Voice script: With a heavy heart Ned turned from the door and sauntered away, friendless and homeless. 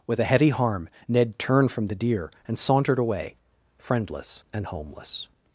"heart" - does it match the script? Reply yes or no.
no